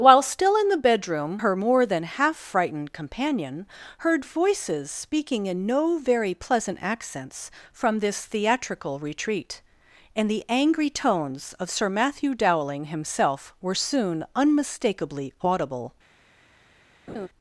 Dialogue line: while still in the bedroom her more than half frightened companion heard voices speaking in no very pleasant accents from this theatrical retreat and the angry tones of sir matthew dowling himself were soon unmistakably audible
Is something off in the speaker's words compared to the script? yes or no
no